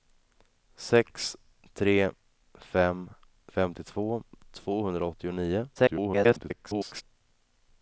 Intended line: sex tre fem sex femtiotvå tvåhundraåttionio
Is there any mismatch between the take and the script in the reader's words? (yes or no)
yes